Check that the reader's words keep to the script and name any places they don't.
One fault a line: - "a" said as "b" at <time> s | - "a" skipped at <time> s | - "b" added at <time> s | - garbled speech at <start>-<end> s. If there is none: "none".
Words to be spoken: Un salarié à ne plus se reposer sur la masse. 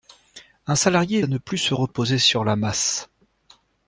none